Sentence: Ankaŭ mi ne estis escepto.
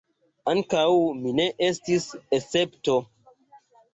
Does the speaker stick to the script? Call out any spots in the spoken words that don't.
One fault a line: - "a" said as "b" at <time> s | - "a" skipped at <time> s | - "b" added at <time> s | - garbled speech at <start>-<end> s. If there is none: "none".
none